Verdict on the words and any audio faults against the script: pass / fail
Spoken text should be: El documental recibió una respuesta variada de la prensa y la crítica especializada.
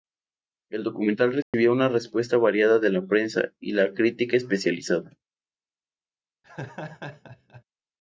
fail